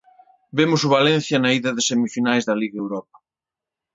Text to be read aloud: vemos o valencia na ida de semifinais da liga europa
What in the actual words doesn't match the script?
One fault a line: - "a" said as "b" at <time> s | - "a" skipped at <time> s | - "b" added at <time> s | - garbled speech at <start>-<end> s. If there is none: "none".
none